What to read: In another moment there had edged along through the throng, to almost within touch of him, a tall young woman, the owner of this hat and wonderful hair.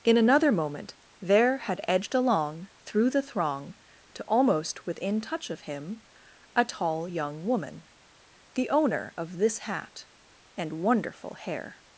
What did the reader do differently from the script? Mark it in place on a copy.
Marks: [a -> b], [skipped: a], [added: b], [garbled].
In another moment there had edged along through the throng, to almost within touch of him, a tall young woman, the owner of this hat and wonderful hair.